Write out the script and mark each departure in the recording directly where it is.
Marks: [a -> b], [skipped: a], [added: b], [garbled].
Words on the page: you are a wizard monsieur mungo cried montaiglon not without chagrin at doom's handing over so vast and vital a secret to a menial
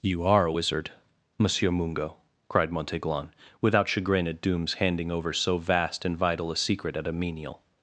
you are a wizard monsieur mungo cried montaiglon [skipped: not] without chagrin at doom's handing over so vast and vital a secret [to -> at] a menial